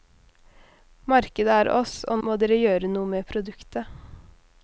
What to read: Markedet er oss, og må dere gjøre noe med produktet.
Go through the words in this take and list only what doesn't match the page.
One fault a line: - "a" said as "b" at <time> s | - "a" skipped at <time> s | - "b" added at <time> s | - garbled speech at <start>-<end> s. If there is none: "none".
none